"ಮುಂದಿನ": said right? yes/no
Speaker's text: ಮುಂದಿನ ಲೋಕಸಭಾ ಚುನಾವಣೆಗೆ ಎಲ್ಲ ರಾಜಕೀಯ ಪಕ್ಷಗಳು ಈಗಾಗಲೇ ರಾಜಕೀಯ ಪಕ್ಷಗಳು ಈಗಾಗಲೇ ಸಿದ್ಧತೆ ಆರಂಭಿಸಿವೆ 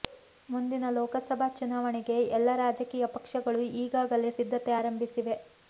yes